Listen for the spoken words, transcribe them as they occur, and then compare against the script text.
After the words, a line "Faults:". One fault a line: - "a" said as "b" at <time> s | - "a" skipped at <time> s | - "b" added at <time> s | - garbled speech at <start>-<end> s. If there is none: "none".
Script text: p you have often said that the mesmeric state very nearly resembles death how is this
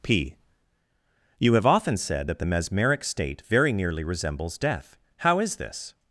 p you have often said that the mesmeric state very nearly resembles death how is this
Faults:
none